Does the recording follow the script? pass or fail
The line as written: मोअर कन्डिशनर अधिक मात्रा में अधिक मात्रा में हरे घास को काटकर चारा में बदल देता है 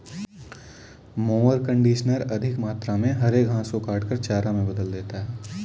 fail